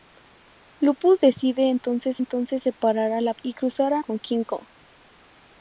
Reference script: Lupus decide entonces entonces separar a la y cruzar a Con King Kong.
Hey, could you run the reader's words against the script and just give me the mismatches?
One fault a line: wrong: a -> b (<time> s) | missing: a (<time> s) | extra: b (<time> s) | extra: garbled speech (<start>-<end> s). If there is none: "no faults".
no faults